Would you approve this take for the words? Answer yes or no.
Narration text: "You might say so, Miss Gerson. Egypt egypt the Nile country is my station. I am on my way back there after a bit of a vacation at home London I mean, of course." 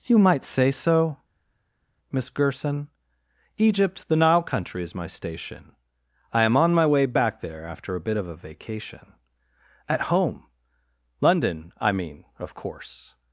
no